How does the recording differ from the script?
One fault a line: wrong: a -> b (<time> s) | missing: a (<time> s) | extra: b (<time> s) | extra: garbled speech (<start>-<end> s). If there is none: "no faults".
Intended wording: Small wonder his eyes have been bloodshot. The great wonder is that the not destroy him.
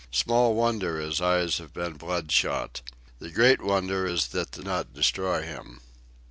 no faults